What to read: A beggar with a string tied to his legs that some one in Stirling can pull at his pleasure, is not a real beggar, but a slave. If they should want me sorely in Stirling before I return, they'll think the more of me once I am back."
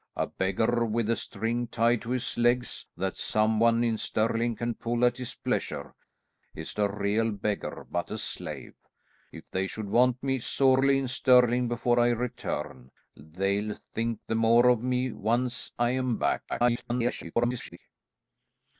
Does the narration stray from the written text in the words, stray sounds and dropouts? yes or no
yes